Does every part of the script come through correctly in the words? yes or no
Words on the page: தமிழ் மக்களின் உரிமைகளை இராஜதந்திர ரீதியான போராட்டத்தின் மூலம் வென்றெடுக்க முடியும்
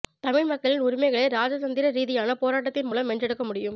yes